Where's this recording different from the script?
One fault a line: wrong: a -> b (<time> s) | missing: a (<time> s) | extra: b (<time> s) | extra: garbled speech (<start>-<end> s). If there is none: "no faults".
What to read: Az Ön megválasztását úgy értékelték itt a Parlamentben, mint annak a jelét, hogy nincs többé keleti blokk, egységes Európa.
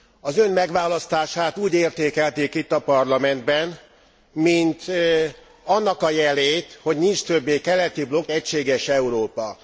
no faults